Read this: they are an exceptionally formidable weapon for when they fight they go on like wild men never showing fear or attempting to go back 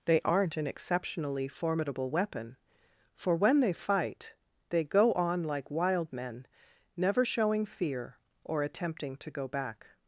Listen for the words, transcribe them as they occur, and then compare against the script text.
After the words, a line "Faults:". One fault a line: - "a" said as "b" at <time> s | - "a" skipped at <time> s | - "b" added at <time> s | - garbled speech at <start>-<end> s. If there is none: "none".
they aren't an exceptionally formidable weapon for when they fight they go on like wild men never showing fear or attempting to go back
Faults:
- "are" said as "aren't" at 0.2 s